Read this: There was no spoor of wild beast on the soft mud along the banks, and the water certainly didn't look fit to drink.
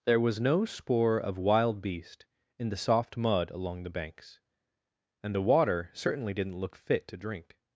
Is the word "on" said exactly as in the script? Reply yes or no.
no